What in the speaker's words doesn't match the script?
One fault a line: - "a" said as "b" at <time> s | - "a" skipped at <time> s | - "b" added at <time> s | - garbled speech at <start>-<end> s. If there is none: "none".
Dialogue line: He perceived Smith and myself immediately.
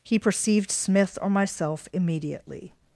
- "and" said as "or" at 1.2 s